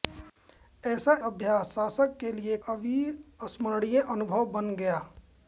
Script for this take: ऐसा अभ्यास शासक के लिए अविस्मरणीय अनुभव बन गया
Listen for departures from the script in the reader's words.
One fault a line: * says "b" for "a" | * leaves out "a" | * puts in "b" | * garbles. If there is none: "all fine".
all fine